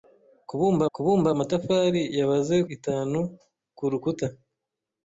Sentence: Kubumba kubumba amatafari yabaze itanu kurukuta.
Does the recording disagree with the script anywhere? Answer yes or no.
no